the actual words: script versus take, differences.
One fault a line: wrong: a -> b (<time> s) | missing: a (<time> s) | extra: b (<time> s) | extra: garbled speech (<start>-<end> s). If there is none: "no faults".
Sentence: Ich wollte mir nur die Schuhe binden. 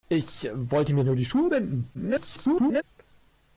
extra: garbled speech (1.9-2.8 s)